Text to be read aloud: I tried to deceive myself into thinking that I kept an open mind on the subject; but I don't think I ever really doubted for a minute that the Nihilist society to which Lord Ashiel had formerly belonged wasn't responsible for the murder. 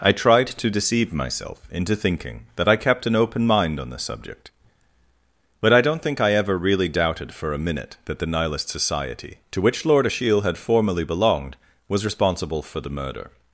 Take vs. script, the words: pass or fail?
fail